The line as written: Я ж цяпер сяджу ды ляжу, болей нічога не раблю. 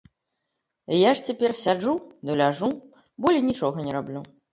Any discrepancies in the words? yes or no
no